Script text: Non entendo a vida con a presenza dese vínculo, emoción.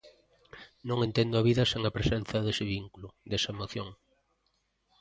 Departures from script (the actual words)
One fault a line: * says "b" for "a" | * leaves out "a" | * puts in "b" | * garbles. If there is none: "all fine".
* says "sen" for "con"
* puts in "desa"